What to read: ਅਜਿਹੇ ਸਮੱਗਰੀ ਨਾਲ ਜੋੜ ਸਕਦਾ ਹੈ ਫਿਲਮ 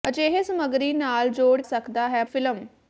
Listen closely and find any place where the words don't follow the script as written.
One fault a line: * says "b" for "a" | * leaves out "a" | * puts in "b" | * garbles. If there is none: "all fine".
all fine